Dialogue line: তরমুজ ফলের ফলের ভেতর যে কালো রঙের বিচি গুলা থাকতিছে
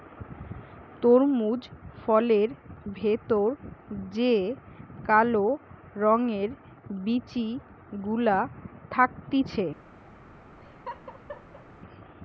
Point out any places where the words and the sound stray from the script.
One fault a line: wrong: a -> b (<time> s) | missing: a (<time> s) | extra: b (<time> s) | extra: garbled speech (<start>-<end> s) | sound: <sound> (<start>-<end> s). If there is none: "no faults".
missing: ফলের (2.5 s)
sound: laugh (10.6-11.7 s)